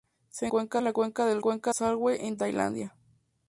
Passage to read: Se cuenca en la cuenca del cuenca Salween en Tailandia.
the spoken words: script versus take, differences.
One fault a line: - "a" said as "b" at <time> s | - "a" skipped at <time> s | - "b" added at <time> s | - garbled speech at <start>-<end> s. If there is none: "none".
none